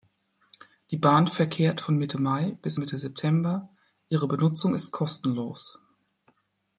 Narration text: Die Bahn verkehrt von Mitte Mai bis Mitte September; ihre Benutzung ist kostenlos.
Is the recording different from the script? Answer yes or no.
no